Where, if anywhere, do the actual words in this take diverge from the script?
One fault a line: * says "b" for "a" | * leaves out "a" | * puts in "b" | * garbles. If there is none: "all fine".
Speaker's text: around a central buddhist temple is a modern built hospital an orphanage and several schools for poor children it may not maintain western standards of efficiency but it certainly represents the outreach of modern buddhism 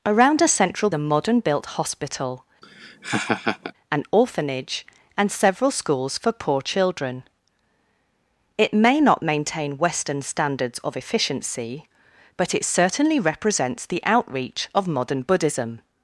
* leaves out "buddhist temple is"